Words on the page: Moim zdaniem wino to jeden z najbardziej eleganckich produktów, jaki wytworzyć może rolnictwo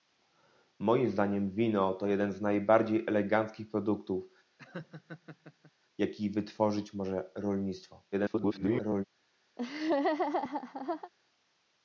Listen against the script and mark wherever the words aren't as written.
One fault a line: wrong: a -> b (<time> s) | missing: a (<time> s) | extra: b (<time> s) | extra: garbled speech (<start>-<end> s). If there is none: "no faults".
extra: garbled speech (8.1-9.0 s)